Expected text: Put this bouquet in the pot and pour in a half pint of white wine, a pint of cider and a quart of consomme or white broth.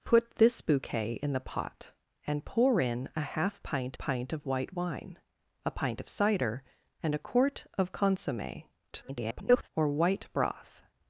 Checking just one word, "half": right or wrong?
right